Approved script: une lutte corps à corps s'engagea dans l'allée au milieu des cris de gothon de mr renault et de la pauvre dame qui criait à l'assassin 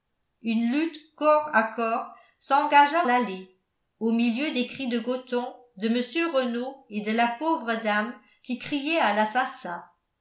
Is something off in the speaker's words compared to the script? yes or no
yes